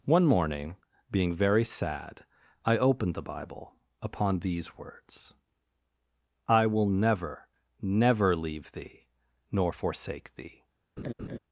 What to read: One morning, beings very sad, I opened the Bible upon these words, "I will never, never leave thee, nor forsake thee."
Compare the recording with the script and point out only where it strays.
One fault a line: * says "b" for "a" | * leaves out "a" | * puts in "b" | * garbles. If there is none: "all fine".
* says "being" for "beings"